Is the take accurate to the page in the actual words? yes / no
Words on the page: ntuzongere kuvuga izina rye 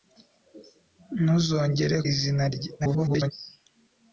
no